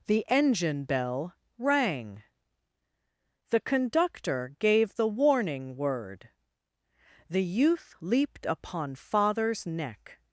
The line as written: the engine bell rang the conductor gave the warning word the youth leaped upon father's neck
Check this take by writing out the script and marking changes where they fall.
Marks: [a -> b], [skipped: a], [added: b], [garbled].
the engine bell rang the conductor gave the warning word the youth leaped upon father's neck